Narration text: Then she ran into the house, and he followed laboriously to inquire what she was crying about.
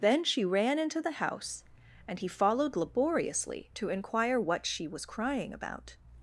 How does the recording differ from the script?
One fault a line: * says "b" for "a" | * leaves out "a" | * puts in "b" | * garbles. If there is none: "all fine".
all fine